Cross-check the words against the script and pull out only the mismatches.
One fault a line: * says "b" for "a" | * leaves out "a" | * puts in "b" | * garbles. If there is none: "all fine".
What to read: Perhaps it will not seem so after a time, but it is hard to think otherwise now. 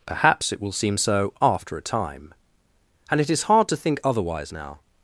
* leaves out "not"
* says "and" for "but"